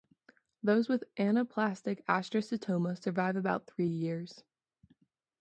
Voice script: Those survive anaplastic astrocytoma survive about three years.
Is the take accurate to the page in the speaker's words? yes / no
no